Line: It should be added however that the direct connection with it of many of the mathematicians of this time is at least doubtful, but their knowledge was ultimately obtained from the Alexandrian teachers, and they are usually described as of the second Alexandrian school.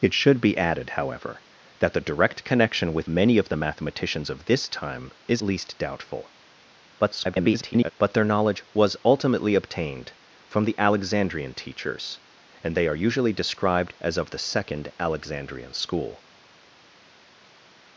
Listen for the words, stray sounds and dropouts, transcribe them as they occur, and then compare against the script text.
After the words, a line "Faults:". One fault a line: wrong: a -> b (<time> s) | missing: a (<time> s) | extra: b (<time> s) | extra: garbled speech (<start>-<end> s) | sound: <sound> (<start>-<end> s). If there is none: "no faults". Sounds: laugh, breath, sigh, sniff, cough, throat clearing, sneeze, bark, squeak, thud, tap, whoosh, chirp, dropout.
It should be added however that the direct connection with many of the mathematicians of this time is least doubtful, [garbled] but their knowledge was ultimately obtained from the Alexandrian teachers, and they are usually described as of the second Alexandrian school.
Faults:
missing: it of (3.1 s)
missing: at (5.4 s)
extra: garbled speech (7.0-7.9 s)